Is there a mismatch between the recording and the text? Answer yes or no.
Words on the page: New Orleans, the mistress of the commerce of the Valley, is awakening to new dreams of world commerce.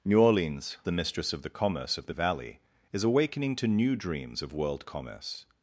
no